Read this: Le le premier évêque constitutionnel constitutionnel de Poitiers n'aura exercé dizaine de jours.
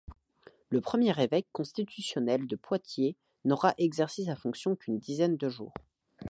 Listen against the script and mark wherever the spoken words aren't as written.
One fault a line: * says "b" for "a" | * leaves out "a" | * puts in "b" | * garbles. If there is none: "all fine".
* leaves out "le"
* leaves out "constitutionnel"
* puts in "sa fonction qu'une"